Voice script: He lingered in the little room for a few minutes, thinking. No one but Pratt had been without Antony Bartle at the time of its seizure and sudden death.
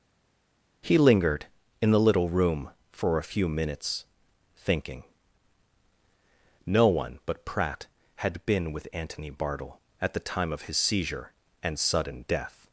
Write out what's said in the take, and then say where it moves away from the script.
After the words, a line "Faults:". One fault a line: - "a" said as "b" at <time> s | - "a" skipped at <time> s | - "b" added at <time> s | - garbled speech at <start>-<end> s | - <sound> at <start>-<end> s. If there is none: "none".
He lingered in the little room for a few minutes, thinking. No one but Pratt had been with Antony Bartle at the time of his seizure and sudden death.
Faults:
- "without" said as "with" at 8.7 s
- "its" said as "his" at 10.6 s